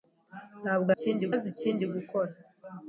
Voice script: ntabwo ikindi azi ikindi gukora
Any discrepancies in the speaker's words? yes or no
no